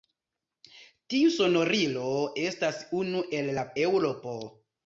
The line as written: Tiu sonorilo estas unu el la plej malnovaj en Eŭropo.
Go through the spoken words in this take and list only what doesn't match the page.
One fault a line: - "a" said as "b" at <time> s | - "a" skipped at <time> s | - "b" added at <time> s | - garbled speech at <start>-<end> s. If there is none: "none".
- "plej malnovaj en" skipped at 3.6 s